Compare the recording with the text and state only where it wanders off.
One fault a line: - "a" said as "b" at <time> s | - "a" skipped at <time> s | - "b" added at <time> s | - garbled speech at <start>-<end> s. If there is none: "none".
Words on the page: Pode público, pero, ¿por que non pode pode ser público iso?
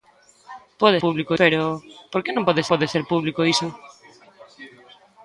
none